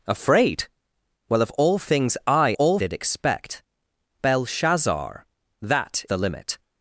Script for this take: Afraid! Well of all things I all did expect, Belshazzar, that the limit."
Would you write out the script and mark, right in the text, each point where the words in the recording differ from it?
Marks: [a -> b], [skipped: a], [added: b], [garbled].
Afraid! Well of all things I all did expect, Belshazzar, that the limit."